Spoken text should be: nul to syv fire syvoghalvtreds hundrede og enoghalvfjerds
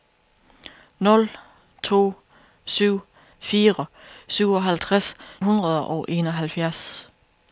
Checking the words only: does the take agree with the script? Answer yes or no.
yes